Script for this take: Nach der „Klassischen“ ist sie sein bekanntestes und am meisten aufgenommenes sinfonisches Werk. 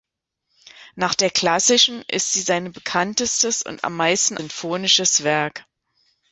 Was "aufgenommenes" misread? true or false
true